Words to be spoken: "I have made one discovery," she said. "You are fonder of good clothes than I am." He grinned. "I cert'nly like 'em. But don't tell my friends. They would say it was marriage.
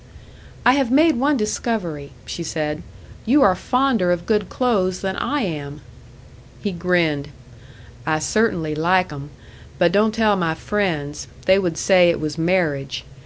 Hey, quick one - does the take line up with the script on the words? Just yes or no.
yes